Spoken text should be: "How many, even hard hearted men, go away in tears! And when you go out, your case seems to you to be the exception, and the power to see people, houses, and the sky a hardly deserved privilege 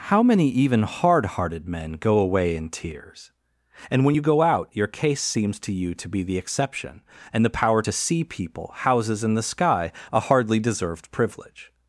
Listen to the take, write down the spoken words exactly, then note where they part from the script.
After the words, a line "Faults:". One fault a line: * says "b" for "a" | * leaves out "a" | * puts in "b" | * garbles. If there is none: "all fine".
"How many, even hard hearted men, go away in tears! And when you go out, your case seems to you to be the exception, and the power to see people, houses, and the sky a hardly deserved privilege
Faults:
all fine